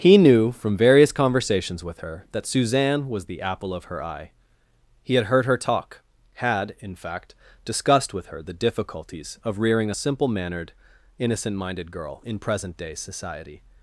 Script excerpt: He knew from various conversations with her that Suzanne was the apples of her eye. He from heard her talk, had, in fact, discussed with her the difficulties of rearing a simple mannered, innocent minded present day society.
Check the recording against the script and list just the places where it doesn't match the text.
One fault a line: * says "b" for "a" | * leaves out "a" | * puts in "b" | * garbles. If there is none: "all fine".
* says "apple" for "apples"
* says "had" for "from"
* puts in "girl in"